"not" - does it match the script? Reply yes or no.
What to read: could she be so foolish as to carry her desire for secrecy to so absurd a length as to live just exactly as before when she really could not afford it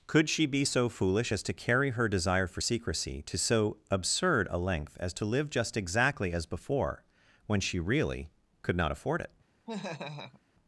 yes